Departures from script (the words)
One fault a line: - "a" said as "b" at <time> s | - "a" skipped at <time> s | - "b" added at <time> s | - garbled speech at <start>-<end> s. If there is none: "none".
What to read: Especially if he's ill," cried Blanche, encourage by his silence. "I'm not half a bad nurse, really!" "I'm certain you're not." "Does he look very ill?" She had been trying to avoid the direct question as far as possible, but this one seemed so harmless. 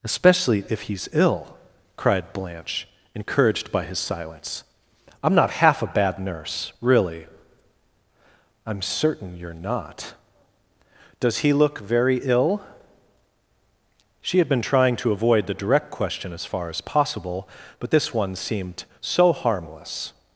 - "encourage" said as "encouraged" at 3.1 s